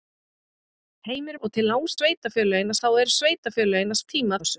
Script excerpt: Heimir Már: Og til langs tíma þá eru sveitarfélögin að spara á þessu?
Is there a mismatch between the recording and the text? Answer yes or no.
yes